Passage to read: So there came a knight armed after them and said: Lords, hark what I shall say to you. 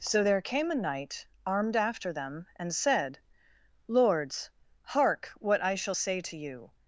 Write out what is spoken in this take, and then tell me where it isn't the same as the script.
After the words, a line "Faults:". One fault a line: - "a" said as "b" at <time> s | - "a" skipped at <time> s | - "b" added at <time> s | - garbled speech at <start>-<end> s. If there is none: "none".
So there came a knight armed after them and said: Lords, hark what I shall say to you.
Faults:
none